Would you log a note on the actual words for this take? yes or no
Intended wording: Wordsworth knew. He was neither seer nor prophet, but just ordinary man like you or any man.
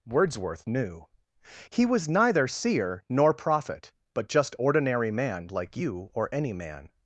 no